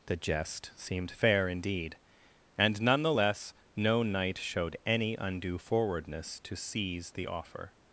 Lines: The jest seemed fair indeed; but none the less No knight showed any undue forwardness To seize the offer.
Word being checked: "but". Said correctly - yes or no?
no